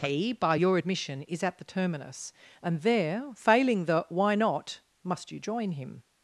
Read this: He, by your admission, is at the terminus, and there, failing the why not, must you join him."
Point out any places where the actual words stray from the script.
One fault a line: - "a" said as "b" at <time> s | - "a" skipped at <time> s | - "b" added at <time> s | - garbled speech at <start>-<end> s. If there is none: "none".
none